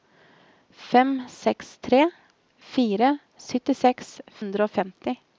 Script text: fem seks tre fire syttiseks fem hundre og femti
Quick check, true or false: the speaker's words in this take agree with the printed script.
false